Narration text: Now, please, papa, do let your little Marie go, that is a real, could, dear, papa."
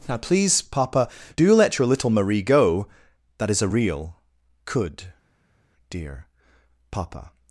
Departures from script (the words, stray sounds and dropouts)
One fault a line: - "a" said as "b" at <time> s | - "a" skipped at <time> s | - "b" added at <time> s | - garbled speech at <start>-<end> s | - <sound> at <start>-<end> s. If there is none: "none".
none